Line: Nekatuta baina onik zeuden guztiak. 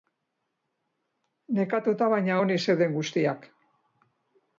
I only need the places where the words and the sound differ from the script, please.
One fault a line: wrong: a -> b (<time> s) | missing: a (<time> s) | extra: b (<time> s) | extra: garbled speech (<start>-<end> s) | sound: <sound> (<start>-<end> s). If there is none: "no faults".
no faults